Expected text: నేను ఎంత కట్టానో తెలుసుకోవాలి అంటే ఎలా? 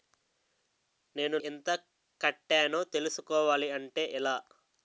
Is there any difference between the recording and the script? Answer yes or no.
no